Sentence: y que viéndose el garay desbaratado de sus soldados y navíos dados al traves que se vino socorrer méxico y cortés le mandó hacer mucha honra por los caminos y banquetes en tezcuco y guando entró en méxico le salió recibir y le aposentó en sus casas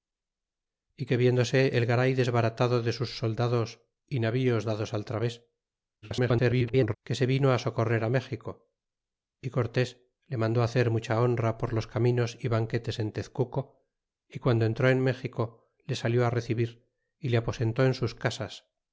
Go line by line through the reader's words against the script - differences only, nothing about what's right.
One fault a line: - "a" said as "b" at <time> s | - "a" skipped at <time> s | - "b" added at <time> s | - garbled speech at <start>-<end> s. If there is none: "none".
- garbled speech at 6.0-6.9 s